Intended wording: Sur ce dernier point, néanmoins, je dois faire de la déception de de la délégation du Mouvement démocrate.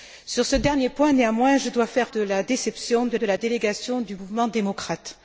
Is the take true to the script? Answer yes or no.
yes